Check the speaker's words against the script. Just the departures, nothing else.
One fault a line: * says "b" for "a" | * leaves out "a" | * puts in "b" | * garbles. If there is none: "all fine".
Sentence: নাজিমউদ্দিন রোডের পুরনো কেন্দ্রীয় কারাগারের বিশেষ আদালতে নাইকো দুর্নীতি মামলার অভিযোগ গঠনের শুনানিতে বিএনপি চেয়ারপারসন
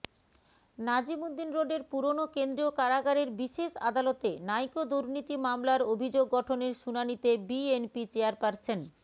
all fine